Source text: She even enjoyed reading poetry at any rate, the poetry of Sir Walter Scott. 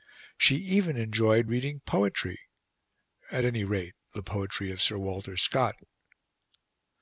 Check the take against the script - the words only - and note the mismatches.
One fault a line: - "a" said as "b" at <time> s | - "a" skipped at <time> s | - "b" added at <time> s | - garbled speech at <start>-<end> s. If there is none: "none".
none